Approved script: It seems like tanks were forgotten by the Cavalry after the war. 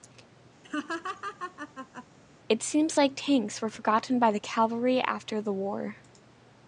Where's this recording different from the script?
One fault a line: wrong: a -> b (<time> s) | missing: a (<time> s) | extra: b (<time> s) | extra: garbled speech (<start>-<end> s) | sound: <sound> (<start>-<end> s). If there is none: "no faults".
sound: laugh (0.6-2.1 s)